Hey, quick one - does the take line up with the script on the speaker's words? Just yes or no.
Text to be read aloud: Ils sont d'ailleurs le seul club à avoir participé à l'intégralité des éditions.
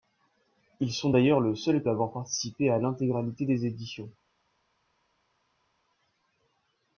no